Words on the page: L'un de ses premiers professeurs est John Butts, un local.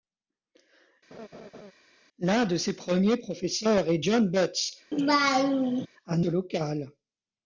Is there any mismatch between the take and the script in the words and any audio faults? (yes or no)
yes